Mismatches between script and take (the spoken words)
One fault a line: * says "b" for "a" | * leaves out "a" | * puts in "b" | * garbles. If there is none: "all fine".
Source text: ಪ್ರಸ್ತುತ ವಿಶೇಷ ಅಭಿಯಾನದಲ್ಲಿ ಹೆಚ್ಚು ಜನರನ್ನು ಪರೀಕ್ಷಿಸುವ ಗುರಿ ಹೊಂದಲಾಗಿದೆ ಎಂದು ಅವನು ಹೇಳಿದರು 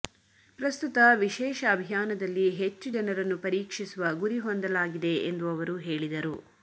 * says "ಅವರು" for "ಅವನು"